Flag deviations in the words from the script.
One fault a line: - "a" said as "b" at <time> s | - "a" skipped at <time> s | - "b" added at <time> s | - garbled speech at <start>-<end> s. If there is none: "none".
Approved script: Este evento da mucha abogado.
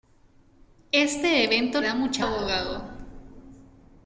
none